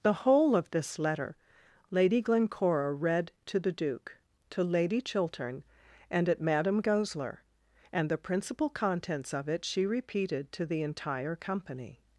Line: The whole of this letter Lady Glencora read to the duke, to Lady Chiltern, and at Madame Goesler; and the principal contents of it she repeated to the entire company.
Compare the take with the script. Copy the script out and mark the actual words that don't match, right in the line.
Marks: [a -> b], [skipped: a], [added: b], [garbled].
The whole of this letter Lady Glencora read to the duke, to Lady Chiltern, and at Madame Goesler; and the principal contents of it she repeated to the entire company.